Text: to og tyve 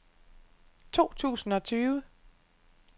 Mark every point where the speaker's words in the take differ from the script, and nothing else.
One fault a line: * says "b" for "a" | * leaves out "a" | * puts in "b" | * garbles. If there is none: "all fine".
* puts in "tusind"